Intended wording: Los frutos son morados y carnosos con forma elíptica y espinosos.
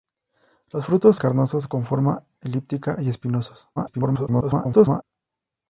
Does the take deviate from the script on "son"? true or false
true